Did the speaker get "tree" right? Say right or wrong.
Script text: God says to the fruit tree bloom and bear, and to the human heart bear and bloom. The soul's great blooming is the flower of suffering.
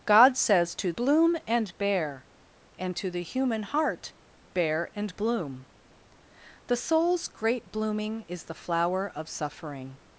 wrong